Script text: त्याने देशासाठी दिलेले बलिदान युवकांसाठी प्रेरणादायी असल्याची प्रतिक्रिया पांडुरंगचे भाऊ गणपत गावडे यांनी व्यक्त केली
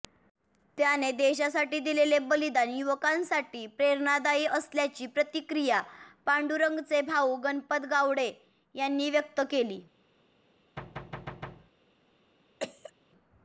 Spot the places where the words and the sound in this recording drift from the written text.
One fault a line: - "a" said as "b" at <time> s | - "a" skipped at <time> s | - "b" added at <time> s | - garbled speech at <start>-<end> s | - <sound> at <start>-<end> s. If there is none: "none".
- thud at 10.8-11.7 s
- cough at 12.6-12.9 s